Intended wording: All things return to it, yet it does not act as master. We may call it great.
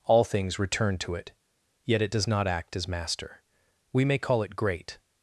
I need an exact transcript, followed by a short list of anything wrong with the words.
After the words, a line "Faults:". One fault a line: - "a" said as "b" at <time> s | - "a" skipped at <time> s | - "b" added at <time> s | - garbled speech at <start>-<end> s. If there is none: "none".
All things return to it, yet it does not act as master. We may call it great.
Faults:
none